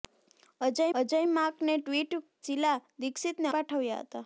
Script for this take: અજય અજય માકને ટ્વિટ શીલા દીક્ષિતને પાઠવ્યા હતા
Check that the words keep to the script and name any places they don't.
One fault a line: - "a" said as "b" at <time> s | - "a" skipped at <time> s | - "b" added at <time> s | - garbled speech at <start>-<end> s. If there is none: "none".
none